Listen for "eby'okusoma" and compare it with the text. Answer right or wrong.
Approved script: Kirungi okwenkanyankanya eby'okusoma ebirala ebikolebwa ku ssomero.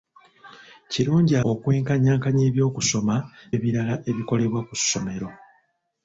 right